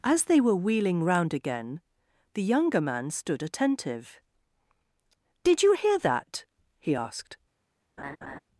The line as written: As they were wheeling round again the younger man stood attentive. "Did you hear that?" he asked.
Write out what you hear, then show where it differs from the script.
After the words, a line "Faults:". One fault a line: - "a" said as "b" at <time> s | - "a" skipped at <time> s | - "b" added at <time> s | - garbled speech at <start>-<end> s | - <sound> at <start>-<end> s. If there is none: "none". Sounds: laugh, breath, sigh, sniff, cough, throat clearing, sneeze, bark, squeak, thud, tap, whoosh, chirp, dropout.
As they were wheeling round again the younger man stood attentive. "Did you hear that?" he asked.
Faults:
- laugh at 8.0-8.4 s